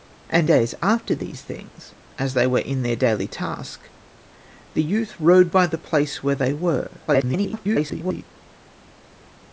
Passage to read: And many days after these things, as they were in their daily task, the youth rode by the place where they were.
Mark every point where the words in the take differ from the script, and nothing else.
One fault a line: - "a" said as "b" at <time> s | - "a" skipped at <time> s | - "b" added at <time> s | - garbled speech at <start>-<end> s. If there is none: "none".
- "many" skipped at 0.5 s
- garbled speech at 7.1-8.2 s